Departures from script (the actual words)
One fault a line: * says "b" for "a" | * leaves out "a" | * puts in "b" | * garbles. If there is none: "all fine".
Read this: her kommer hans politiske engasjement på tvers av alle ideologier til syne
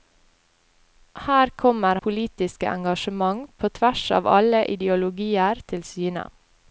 * leaves out "hans"